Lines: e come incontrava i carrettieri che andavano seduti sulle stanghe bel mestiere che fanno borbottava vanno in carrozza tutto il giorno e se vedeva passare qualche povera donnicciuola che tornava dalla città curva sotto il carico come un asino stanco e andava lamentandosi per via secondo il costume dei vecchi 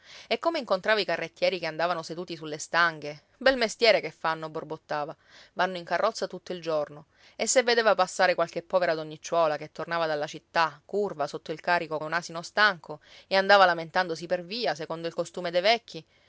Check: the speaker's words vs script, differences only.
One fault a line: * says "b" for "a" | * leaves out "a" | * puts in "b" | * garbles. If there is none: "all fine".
* leaves out "come"